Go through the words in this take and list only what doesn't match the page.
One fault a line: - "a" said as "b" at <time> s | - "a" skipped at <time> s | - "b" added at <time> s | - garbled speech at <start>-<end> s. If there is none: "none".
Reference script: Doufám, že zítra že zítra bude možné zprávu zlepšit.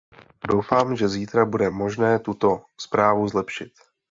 - "že zítra" skipped at 1.4 s
- "tuto" added at 2.2 s